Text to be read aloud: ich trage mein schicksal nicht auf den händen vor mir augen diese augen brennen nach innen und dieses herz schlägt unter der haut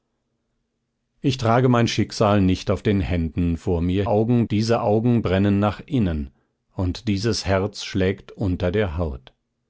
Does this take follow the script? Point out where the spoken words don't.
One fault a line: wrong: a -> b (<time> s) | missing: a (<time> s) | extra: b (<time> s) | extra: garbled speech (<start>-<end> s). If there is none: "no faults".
no faults